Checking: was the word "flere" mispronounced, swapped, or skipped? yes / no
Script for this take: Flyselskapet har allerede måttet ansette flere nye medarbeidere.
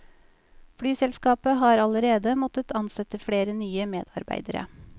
no